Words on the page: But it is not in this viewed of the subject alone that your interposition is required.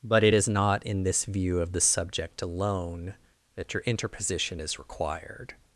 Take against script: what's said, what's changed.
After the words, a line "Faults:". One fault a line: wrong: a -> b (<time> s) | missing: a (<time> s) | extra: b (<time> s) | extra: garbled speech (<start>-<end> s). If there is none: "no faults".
But it is not in this view of the subject alone that your interposition is required.
Faults:
wrong: viewed -> view (1.2 s)